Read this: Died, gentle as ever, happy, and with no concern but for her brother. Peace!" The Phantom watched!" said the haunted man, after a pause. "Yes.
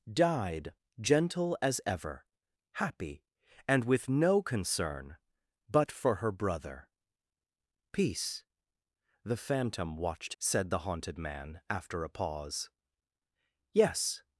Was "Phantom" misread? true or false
false